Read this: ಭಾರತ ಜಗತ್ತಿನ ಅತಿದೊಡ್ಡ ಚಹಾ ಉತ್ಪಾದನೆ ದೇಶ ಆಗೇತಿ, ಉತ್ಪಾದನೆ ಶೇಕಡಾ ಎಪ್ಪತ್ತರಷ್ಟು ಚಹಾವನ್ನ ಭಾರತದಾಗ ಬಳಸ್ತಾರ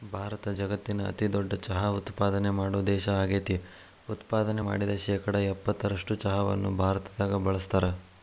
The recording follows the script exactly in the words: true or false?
false